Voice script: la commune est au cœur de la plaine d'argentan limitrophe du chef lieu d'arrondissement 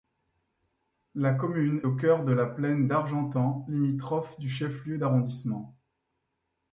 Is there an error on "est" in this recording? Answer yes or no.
yes